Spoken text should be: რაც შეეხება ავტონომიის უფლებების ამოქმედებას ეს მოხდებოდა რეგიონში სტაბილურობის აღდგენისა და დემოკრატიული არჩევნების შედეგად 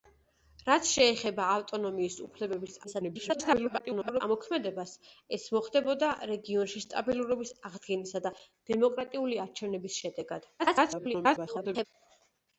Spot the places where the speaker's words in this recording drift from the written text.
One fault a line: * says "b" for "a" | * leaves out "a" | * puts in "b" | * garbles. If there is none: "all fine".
* garbles
* garbles